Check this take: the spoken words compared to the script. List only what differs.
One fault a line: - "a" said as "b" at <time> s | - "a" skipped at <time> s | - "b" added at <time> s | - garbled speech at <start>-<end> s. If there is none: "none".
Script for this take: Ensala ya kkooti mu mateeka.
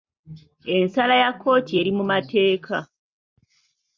- "eri" added at 1.8 s